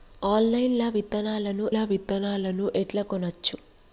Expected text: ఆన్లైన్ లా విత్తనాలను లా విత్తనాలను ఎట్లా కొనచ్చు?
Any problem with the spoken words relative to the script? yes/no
no